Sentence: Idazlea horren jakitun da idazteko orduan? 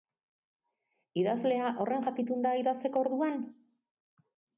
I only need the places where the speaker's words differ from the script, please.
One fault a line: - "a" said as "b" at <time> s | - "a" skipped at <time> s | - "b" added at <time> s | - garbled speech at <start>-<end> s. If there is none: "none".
none